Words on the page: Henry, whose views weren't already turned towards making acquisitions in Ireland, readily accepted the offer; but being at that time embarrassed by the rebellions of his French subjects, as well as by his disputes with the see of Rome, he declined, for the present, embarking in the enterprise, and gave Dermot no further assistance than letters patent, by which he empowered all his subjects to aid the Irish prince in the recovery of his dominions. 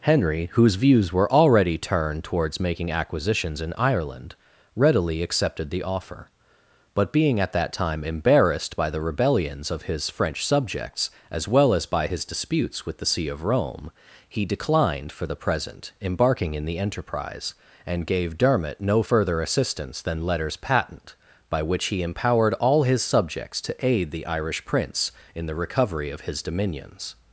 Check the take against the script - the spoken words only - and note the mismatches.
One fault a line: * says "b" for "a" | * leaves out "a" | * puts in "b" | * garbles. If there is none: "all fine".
* says "were" for "weren't"